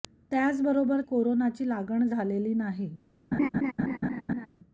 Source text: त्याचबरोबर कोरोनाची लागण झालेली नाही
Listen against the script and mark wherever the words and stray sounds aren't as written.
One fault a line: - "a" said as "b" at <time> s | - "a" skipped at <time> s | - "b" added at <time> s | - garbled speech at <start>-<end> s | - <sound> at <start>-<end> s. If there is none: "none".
- laugh at 3.3-4.5 s